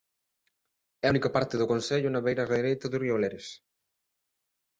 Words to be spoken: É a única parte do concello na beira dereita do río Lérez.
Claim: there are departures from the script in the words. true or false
false